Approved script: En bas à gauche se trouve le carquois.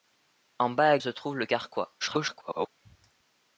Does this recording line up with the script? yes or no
no